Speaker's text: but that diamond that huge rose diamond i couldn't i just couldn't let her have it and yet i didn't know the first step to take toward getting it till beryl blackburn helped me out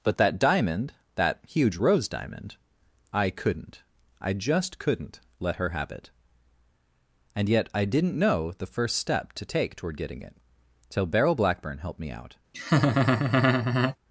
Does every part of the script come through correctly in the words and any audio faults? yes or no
no